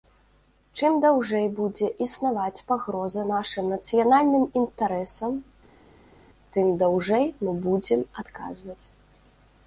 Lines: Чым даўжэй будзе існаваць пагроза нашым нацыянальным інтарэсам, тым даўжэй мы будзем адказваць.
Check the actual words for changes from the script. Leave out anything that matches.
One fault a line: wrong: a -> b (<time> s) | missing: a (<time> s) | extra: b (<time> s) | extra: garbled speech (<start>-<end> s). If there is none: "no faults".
no faults